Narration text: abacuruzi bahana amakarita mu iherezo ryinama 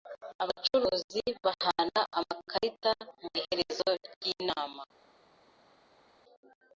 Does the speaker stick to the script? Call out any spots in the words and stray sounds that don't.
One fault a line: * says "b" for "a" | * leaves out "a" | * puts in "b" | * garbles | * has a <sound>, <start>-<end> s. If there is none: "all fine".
all fine